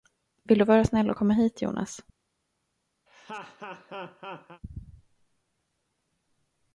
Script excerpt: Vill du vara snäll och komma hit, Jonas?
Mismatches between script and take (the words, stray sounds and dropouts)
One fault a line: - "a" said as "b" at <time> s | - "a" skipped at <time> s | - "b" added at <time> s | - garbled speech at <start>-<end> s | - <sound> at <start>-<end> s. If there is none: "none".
- laugh at 3.1-4.6 s